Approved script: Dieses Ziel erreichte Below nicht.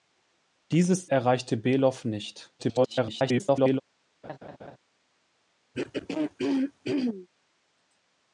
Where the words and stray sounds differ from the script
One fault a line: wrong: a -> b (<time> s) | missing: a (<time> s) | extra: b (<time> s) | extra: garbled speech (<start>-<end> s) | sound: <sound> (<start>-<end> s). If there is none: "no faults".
missing: Ziel (1.1 s)
extra: garbled speech (2.6-3.8 s)
sound: laugh (4.2-4.8 s)
sound: throat clearing (5.7-7.3 s)